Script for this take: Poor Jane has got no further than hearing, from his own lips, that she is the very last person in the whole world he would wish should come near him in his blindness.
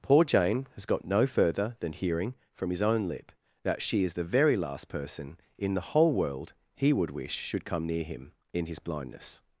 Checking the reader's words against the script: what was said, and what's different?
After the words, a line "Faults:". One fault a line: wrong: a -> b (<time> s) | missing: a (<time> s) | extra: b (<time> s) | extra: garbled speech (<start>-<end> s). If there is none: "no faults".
Poor Jane has got no further than hearing, from his own lip, that she is the very last person in the whole world he would wish should come near him in his blindness.
Faults:
wrong: lips -> lip (3.1 s)